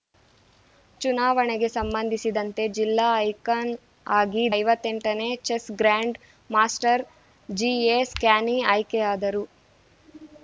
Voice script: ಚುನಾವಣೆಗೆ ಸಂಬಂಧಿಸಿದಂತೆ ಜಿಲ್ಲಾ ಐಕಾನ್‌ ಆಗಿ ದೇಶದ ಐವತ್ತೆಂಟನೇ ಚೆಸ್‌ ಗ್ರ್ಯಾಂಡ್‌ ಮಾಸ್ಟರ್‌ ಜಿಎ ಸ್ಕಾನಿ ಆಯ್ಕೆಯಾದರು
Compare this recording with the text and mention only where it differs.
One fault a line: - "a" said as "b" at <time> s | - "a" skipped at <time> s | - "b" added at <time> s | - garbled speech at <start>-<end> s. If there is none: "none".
- "ದೇಶದ" skipped at 4.4 s